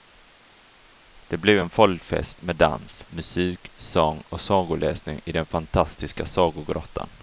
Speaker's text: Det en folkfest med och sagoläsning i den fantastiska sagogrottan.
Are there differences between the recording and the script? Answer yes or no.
yes